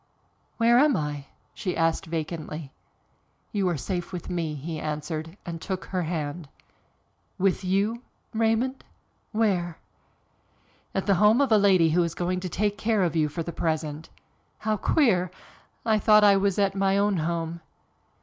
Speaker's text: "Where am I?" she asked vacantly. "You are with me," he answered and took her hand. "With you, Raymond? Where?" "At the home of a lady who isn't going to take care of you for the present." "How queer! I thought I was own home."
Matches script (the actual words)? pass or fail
fail